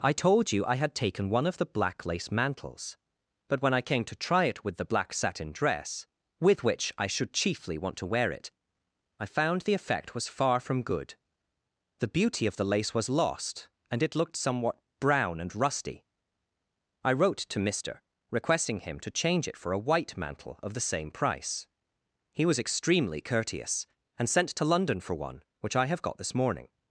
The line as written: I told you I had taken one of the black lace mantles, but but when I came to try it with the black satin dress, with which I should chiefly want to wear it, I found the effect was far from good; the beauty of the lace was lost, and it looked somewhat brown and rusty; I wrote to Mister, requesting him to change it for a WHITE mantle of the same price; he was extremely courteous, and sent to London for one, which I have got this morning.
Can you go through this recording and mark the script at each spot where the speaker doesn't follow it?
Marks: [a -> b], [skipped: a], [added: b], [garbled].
I told you I had taken one of the black lace mantles, but [skipped: but] when I came to try it with the black satin dress, with which I should chiefly want to wear it, I found the effect was far from good; the beauty of the lace was lost, and it looked somewhat brown and rusty; I wrote to Mister, requesting him to change it for a WHITE mantle of the same price; he was extremely courteous, and sent to London for one, which I have got this morning.